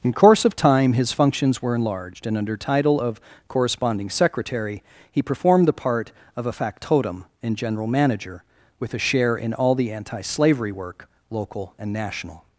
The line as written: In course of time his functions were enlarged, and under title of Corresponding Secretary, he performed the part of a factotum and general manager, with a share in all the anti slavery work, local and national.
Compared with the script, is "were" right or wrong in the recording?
right